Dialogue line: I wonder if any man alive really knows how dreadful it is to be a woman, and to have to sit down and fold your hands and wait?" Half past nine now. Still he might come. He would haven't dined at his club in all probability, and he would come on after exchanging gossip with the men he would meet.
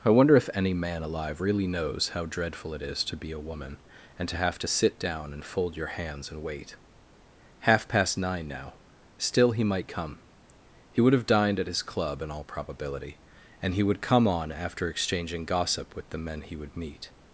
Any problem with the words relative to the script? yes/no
yes